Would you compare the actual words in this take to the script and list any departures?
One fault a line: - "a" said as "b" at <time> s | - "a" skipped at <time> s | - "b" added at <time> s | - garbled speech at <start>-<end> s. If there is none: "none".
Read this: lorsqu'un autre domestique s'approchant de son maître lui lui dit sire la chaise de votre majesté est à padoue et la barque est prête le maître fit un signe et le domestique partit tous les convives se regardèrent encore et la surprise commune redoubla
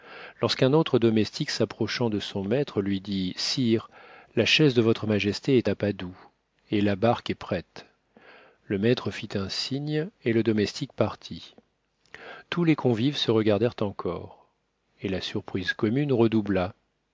- "lui" skipped at 3.0 s